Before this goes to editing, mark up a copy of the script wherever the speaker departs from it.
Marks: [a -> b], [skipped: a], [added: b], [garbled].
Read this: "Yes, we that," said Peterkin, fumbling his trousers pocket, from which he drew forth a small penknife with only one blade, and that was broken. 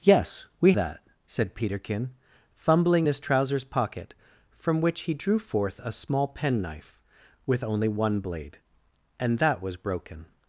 "Yes, we that," said Peterkin, fumbling his trousers pocket, from which he drew forth a small penknife with only one blade, and that was broken.